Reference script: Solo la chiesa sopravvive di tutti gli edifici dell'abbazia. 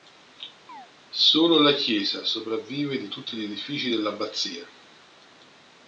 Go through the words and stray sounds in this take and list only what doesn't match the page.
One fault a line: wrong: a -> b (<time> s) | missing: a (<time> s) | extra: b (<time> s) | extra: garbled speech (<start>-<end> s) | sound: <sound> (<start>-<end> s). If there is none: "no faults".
sound: chirp (0.7-0.9 s)